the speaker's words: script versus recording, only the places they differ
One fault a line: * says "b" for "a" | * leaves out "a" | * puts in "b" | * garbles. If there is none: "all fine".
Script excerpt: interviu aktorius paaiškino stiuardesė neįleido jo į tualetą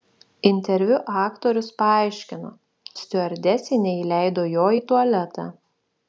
all fine